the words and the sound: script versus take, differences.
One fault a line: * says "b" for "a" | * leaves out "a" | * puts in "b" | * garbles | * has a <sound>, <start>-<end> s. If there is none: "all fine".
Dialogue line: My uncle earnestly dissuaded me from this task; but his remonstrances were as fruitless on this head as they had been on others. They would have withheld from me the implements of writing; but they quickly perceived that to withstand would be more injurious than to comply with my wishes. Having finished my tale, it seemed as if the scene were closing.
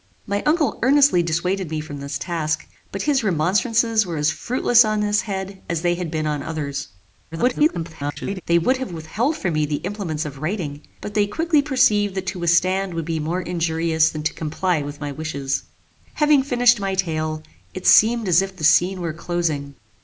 * garbles